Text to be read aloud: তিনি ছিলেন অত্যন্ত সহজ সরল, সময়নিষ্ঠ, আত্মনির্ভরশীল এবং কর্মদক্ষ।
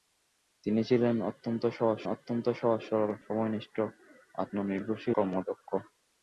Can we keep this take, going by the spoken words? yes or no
no